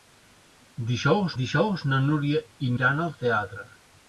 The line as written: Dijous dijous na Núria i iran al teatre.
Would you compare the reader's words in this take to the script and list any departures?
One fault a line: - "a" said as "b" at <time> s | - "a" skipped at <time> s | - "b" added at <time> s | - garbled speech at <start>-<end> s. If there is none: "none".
none